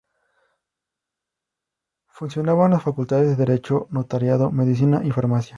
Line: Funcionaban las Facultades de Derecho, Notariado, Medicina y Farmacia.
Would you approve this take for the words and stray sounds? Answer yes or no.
yes